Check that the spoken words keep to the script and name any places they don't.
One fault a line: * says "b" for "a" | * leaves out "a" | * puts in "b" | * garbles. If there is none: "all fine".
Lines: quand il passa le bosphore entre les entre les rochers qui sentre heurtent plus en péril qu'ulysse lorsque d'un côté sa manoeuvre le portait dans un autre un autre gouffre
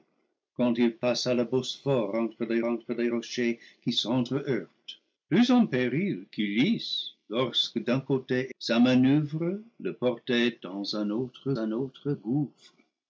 all fine